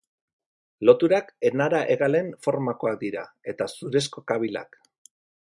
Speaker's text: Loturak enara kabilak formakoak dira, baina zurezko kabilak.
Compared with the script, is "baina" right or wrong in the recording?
wrong